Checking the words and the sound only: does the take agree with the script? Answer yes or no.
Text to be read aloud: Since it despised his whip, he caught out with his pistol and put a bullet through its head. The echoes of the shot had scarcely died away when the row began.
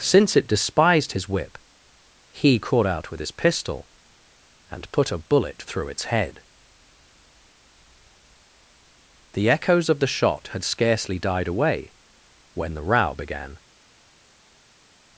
yes